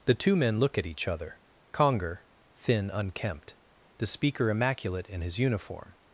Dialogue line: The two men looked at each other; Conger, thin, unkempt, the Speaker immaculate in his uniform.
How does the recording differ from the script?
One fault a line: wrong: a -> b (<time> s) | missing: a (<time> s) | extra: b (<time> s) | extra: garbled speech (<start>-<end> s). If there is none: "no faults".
wrong: looked -> look (0.6 s)